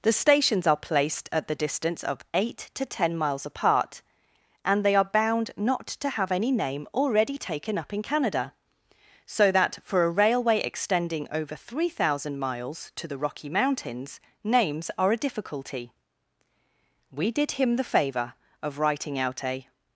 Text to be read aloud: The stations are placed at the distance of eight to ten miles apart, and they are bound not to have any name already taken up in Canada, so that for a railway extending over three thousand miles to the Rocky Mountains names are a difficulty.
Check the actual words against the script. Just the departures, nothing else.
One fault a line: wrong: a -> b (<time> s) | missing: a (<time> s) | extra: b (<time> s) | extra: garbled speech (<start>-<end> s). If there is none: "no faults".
extra: We did him the favour of writing out a (17.1 s)